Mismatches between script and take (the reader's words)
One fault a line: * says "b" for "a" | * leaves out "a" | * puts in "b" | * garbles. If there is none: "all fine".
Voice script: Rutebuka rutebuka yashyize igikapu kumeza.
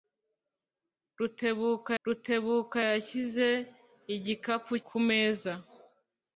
all fine